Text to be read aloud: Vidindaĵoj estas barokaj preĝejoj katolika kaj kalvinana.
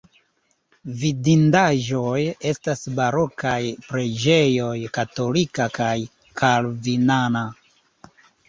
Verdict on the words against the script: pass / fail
pass